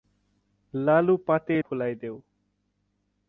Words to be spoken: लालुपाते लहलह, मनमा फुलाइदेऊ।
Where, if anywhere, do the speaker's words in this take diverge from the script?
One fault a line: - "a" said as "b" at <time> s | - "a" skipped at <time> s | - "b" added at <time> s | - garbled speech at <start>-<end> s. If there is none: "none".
- "लहलह मनमा" skipped at 1.6 s